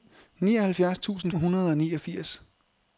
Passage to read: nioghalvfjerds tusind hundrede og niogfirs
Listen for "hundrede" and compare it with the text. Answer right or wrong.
right